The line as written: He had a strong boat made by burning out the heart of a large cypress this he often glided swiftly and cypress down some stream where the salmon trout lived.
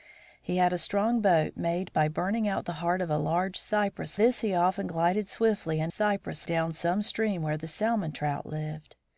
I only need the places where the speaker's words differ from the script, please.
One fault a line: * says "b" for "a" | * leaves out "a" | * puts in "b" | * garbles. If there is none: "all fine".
all fine